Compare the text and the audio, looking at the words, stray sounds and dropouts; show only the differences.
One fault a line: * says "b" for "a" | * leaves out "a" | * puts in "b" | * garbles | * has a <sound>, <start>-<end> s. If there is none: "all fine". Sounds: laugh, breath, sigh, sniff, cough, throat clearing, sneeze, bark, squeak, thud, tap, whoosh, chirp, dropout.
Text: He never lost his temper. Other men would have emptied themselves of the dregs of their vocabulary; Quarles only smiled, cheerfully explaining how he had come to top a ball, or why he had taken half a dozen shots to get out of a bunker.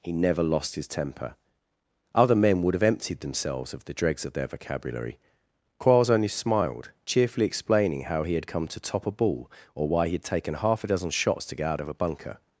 all fine